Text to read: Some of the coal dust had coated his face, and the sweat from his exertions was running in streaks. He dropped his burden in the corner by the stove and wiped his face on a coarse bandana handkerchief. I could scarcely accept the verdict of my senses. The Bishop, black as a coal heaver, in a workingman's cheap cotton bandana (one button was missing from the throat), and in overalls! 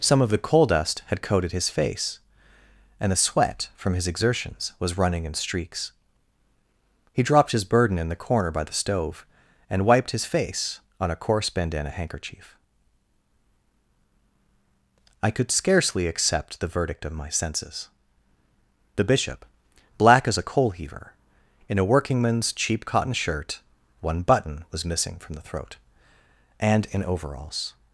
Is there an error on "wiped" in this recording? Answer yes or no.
no